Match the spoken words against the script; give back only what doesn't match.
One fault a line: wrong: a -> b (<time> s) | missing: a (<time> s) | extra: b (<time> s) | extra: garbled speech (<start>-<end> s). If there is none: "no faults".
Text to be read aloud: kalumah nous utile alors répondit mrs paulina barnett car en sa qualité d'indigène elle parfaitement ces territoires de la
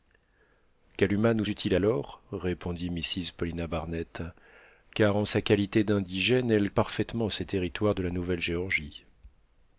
no faults